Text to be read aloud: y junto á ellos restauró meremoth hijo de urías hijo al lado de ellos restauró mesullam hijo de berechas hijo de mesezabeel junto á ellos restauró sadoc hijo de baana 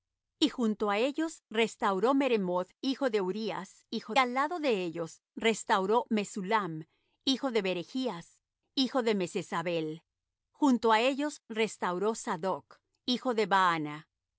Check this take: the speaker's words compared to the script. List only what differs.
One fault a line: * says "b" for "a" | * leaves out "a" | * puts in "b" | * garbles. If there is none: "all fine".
all fine